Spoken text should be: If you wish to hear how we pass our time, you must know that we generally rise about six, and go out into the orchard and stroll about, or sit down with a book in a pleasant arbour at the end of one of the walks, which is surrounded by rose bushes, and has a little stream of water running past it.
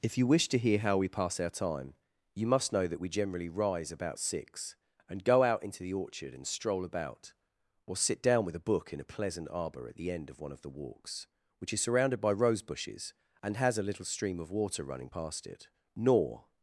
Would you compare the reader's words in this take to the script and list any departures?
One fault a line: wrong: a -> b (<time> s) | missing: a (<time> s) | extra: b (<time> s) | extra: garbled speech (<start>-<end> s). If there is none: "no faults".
extra: Nor (16.0 s)